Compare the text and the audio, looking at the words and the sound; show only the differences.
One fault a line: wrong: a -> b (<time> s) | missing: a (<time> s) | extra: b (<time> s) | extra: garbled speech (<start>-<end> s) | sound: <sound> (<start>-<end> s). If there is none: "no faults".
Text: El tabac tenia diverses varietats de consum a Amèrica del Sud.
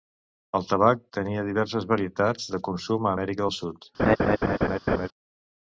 sound: laugh (4.0-5.1 s)